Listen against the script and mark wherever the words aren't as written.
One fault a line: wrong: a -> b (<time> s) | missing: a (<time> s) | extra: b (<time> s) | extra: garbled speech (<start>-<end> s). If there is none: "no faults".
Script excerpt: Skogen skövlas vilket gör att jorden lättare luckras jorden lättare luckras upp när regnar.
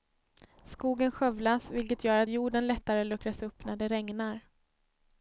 missing: jorden lättare luckras (3.4 s)
extra: det (3.8 s)